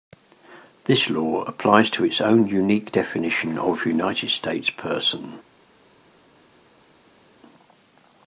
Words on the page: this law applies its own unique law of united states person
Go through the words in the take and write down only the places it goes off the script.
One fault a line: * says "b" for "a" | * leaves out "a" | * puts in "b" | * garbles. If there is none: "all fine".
* puts in "to"
* says "definition" for "law"